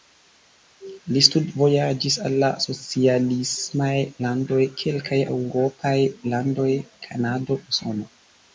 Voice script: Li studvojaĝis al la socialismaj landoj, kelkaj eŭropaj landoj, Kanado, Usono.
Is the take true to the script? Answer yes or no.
yes